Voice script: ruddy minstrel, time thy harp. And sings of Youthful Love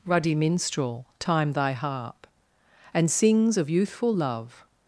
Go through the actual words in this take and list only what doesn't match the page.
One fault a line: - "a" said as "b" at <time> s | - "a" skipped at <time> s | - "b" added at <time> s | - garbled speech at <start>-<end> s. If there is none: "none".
none